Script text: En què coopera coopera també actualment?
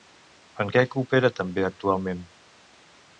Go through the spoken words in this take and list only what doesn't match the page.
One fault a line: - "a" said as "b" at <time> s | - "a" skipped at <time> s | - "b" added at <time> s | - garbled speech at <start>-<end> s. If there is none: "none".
- "coopera" skipped at 1.3 s